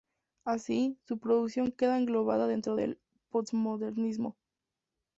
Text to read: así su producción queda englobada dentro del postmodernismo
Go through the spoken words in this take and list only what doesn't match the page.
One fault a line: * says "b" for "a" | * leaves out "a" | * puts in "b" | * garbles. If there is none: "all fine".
all fine